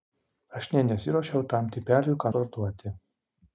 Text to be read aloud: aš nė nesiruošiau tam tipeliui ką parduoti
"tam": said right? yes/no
yes